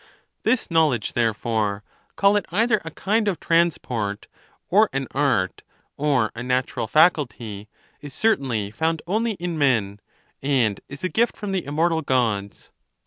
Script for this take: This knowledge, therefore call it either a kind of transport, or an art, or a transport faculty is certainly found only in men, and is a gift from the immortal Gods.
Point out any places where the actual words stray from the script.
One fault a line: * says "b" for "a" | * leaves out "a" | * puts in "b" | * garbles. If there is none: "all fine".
* says "natural" for "transport"